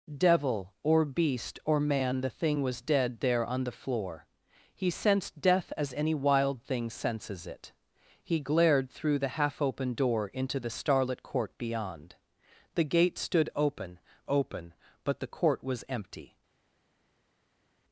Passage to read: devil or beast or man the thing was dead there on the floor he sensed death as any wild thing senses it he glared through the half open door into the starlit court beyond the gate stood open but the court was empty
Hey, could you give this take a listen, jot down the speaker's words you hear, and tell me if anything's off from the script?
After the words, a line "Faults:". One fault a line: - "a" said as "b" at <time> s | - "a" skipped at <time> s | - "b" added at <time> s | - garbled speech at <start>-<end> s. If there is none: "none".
devil or beast or man the thing was dead there on the floor he sensed death as any wild thing senses it he glared through the half open door into the starlit court beyond the gate stood open open but the court was empty
Faults:
- "open" added at 14.3 s